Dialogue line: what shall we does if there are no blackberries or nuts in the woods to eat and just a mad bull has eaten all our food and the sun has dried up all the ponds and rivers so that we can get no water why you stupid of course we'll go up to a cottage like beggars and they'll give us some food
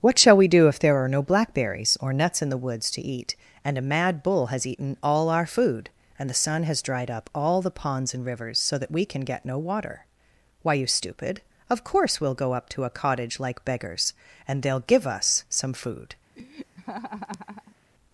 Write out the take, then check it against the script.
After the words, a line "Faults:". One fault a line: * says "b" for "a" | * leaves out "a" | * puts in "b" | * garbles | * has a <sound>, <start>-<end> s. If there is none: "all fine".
what shall we do if there are no blackberries or nuts in the woods to eat and a mad bull has eaten all our food and the sun has dried up all the ponds and rivers so that we can get no water why you stupid of course we'll go up to a cottage like beggars and they'll give us some food
Faults:
* says "do" for "does"
* leaves out "just"
* has a laugh, 16.3-17.8 s